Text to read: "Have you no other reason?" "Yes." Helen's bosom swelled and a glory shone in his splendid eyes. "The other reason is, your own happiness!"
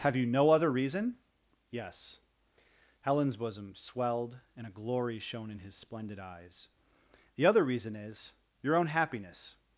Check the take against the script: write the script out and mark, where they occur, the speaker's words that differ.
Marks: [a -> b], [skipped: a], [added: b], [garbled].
"Have you no other reason?" "Yes." Helen's bosom swelled and a glory shone in his splendid eyes. "The other reason is, your own happiness!"